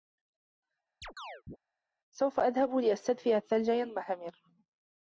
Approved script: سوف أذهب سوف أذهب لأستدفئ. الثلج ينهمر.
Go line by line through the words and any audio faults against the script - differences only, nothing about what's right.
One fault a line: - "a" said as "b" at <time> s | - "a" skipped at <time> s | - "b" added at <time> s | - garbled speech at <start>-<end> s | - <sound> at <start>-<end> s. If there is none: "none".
- chirp at 1.0-1.6 s
- "سوف أذهب" skipped at 2.8 s